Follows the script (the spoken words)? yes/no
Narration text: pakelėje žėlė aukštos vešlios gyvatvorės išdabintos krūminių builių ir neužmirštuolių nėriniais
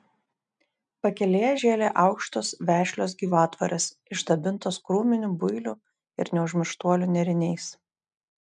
yes